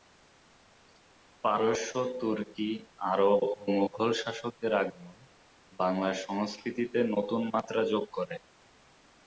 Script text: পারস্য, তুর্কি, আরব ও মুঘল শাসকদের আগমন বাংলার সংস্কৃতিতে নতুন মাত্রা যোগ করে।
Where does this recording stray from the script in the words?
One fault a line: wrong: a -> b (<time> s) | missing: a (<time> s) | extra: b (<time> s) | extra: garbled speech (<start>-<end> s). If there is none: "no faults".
no faults